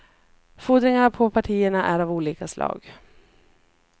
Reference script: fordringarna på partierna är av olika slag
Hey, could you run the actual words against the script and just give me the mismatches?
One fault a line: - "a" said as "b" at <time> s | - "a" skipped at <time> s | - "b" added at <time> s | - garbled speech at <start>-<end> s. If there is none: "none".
none